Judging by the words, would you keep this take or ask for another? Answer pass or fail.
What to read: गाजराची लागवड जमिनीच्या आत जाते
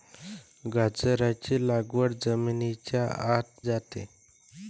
pass